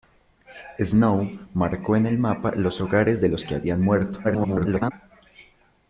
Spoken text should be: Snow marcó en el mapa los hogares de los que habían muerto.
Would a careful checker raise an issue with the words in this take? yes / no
yes